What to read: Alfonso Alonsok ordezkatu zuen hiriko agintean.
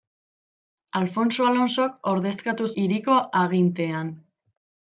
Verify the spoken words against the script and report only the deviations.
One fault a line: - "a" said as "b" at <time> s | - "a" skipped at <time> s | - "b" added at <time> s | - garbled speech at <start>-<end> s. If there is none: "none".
- "zuen" skipped at 2.7 s